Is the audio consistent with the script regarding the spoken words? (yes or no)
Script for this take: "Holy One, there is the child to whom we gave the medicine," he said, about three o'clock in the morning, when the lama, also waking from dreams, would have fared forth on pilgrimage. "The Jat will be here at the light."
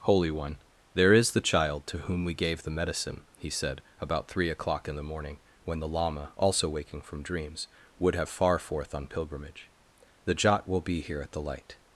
no